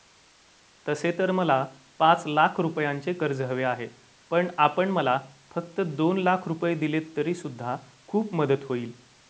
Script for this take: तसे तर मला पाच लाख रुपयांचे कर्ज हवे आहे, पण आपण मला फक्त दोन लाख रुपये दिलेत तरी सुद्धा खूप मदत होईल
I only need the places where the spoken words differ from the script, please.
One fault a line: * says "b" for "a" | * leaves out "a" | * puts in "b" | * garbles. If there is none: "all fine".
all fine